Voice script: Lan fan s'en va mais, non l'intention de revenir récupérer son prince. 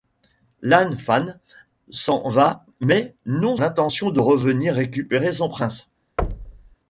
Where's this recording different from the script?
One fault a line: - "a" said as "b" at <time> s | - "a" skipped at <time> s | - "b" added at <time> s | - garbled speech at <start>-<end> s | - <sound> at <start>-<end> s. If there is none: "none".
- thud at 6.2-6.8 s